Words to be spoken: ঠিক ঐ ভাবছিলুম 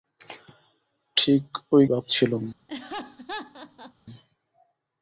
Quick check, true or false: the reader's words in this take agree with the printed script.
true